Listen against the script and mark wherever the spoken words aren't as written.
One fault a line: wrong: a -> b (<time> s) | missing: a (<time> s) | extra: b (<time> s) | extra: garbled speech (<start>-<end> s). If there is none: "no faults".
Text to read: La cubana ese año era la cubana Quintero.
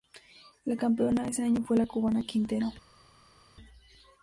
wrong: cubana -> campeona (0.8 s)
wrong: era -> fue (1.6 s)